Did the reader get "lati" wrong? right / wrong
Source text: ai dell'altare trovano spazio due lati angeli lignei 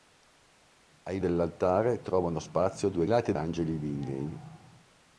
right